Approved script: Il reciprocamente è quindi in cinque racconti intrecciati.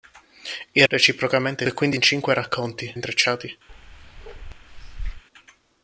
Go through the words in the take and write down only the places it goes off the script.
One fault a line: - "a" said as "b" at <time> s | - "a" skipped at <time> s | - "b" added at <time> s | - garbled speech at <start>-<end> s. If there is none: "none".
none